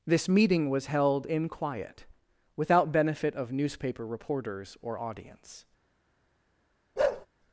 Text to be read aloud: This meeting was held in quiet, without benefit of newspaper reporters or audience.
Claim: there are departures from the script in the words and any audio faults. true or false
true